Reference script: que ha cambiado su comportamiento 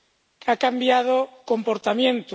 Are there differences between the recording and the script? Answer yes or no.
yes